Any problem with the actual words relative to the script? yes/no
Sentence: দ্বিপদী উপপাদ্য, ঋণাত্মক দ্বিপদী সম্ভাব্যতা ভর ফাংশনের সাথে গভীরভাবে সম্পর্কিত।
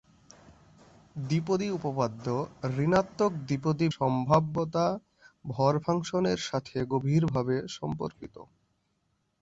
no